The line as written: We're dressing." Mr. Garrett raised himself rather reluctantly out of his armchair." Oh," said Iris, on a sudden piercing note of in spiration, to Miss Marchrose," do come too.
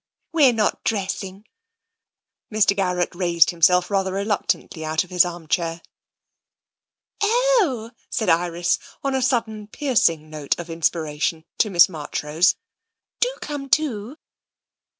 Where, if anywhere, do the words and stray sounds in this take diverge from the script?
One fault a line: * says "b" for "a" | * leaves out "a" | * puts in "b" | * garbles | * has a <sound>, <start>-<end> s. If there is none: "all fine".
* puts in "not"